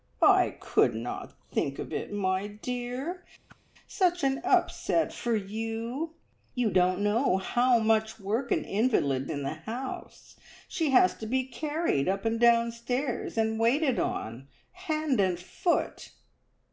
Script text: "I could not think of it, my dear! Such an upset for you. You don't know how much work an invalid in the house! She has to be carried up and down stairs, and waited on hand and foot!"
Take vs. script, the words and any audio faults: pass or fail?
fail